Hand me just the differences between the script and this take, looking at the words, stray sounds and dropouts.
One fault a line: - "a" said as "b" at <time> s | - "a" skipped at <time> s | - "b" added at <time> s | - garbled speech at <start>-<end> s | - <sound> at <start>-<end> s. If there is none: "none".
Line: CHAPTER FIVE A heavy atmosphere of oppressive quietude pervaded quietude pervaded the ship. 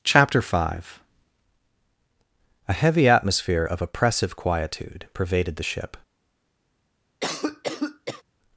- "quietude pervaded" skipped at 5.6 s
- cough at 7.2-8.2 s